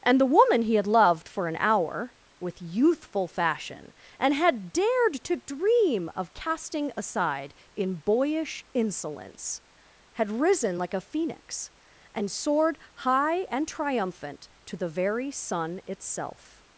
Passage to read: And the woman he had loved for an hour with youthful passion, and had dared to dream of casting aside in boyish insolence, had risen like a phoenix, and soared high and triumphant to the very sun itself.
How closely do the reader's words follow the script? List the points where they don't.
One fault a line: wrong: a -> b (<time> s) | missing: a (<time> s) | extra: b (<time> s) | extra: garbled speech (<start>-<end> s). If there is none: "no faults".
wrong: passion -> fashion (3.3 s)